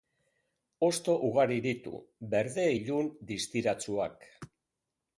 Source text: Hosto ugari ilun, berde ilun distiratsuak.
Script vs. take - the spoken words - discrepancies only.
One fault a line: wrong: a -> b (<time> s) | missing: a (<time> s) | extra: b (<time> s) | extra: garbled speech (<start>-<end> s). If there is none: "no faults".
wrong: ilun -> ditu (1.6 s)